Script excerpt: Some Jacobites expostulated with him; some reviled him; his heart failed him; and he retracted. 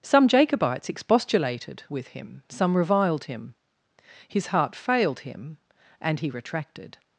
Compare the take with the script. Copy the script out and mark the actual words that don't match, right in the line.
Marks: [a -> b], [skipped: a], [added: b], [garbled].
Some Jacobites expostulated with him; some reviled him; his heart failed him; and he retracted.